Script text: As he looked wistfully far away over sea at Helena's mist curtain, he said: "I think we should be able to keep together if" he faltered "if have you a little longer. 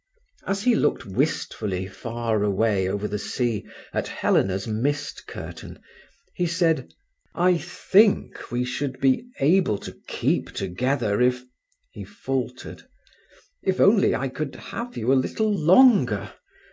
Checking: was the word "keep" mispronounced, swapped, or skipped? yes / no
no